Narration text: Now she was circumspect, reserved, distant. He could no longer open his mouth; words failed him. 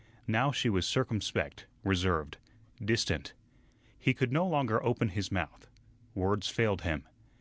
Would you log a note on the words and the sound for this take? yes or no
no